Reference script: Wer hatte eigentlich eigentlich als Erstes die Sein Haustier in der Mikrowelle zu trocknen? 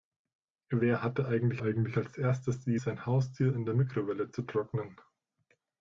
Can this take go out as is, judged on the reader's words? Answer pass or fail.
pass